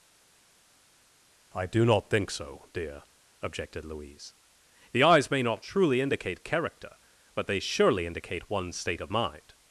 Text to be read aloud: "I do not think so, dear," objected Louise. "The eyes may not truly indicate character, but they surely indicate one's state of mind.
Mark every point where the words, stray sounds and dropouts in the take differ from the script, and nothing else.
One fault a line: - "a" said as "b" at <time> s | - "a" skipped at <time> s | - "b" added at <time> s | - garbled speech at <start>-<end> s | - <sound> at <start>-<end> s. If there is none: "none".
none